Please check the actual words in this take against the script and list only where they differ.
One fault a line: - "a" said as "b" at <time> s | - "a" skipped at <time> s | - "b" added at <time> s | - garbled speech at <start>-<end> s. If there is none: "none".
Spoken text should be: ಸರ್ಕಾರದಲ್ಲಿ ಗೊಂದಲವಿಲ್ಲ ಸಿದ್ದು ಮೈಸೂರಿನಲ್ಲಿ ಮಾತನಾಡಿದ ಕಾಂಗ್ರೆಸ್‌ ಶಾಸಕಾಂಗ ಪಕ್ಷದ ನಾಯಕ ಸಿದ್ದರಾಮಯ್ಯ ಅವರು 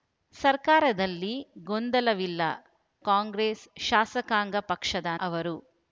- "ಸಿದ್ದು ಮೈಸೂರಿನಲ್ಲಿ ಮಾತನಾಡಿದ" skipped at 2.4 s
- "ನಾಯಕ ಸಿದ್ದರಾಮಯ್ಯ" skipped at 5.1 s